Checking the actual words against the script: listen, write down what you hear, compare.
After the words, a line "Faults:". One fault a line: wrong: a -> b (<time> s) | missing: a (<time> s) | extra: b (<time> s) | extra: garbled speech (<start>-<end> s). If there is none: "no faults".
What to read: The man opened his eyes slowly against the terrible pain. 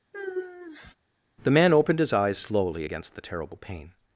The man opened his eyes slowly against the terrible pain.
Faults:
no faults